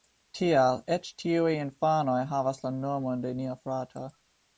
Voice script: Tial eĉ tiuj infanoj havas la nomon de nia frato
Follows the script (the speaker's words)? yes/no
yes